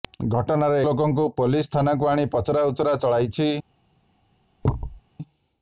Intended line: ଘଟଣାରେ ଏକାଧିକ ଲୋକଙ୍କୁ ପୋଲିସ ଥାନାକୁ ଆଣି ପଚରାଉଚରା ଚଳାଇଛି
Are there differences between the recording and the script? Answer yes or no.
yes